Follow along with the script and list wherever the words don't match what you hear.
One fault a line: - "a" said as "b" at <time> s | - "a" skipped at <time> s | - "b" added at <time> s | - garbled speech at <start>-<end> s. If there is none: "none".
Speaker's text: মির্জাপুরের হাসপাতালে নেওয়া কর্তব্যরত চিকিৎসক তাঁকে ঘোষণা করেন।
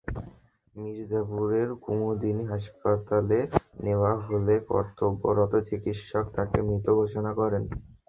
- "কুমুদিনী" added at 1.8 s
- "হলে" added at 4.2 s
- "মৃত" added at 6.7 s